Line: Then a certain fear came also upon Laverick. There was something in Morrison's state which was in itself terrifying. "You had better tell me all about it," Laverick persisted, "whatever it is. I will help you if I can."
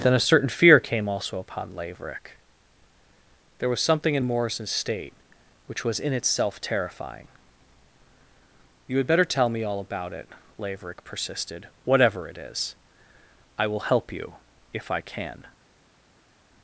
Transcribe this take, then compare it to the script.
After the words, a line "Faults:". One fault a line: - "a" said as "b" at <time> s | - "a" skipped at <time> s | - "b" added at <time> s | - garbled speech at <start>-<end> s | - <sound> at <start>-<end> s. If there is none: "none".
Then a certain fear came also upon Laverick. There was something in Morrison's state which was in itself terrifying. "You had better tell me all about it," Laverick persisted, "whatever it is. I will help you if I can."
Faults:
none